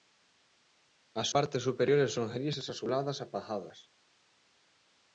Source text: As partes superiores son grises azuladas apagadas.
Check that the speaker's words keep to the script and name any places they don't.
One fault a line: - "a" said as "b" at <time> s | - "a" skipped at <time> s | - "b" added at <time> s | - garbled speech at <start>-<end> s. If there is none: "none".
none